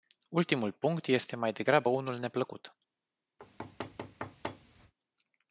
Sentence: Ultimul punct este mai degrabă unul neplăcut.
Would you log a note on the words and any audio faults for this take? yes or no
yes